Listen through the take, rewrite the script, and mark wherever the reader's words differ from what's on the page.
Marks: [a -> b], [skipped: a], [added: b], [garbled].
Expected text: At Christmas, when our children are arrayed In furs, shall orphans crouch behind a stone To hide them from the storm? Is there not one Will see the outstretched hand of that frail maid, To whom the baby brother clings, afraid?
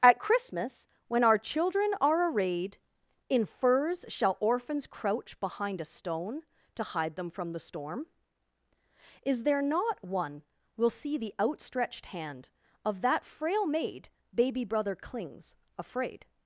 At Christmas, when our children are arrayed In furs, shall orphans crouch behind a stone To hide them from the storm? Is there not one Will see the outstretched hand of that frail maid, [skipped: To whom the] baby brother clings, afraid?